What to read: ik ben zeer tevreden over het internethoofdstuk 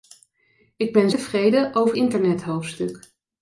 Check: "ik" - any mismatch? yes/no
no